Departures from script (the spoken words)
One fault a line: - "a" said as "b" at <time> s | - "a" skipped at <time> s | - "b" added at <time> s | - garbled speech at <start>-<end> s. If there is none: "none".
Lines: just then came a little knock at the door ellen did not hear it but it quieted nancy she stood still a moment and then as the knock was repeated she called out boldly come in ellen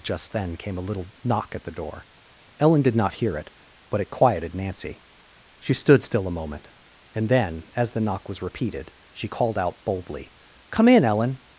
none